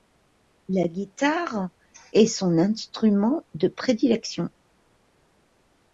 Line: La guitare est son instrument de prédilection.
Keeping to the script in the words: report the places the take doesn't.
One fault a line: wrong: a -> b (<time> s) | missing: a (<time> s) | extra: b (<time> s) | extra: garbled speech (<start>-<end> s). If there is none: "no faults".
no faults